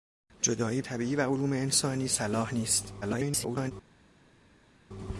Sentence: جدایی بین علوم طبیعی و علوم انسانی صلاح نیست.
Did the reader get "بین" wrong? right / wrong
wrong